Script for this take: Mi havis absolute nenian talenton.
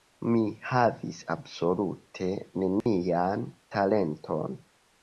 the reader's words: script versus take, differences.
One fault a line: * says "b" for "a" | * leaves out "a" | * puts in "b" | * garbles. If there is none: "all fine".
all fine